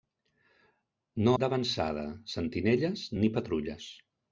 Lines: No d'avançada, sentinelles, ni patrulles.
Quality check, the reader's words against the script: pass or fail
pass